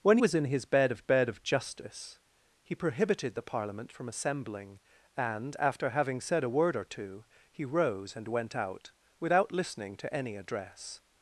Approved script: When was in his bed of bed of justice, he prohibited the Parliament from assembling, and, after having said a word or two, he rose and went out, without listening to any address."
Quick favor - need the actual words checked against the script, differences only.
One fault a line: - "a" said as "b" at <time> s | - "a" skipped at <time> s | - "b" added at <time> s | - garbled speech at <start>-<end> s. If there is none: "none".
none